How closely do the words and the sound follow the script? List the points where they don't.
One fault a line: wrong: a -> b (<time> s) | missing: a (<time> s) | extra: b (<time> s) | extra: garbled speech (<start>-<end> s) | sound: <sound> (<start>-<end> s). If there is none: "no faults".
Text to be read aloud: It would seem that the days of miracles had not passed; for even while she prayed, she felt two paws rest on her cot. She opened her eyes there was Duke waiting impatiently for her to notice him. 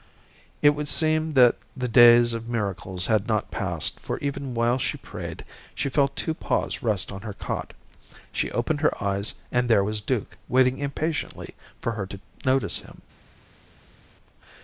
extra: and (9.5 s)